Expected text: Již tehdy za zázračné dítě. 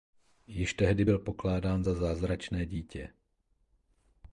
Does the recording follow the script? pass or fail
fail